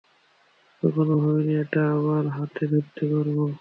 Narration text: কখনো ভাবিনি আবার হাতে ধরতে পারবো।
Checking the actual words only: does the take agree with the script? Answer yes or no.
no